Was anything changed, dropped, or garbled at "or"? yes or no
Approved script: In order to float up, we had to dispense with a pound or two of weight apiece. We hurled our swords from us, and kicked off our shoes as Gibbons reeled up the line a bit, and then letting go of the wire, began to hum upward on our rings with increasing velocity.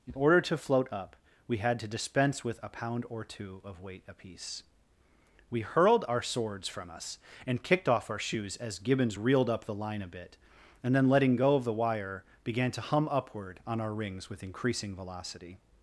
no